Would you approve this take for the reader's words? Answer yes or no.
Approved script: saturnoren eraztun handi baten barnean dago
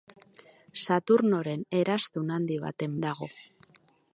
no